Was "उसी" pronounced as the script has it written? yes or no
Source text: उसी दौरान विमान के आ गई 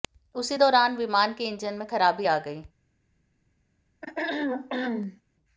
yes